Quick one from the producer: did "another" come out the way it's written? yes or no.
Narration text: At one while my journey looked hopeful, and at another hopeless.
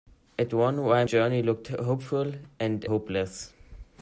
no